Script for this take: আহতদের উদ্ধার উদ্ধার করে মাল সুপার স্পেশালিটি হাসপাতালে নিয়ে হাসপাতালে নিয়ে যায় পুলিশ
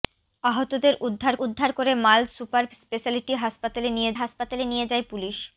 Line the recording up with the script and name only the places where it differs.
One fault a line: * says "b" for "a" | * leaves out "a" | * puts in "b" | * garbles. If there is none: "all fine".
all fine